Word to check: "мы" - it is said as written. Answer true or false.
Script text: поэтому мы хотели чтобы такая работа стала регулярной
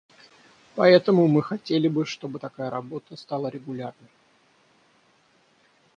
true